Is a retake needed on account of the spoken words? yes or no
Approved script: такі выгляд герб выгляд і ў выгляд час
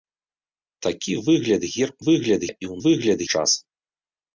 no